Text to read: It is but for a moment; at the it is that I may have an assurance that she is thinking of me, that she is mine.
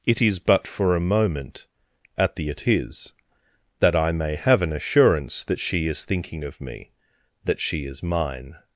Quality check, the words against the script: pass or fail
pass